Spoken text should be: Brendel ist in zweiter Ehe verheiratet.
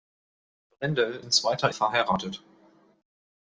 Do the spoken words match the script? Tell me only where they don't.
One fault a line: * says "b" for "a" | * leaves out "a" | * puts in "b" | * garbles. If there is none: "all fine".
* leaves out "ist"
* leaves out "Ehe"